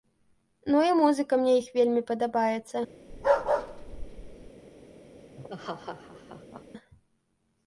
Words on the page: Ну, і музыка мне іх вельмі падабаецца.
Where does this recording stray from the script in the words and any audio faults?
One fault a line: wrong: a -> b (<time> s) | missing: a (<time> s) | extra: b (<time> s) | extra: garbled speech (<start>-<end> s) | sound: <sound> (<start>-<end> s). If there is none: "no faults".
sound: bark (3.1-4.5 s)
sound: laugh (5.4-6.6 s)